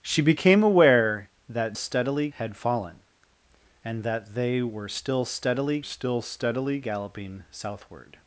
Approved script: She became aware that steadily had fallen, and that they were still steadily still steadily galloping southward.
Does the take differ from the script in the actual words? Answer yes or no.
no